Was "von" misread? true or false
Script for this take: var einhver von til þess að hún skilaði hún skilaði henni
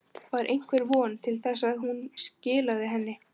false